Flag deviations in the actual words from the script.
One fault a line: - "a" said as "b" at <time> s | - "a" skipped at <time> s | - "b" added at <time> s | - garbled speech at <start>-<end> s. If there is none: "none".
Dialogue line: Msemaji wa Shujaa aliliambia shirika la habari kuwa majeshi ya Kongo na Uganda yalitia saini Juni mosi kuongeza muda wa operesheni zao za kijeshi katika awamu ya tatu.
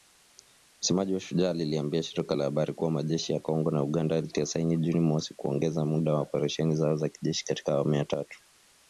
none